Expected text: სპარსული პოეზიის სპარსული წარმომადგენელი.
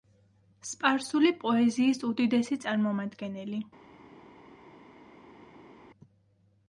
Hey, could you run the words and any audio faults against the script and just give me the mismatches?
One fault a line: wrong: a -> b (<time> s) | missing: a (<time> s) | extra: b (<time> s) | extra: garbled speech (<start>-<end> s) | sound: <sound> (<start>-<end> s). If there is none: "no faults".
wrong: სპარსული -> უდიდესი (2.1 s)